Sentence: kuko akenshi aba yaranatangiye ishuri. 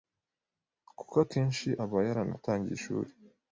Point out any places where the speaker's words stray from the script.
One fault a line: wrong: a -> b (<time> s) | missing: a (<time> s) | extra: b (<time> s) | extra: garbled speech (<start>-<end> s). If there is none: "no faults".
no faults